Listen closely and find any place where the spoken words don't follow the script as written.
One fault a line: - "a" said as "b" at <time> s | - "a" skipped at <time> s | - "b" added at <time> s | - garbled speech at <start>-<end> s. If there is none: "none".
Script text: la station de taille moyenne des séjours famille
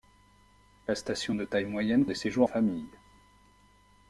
none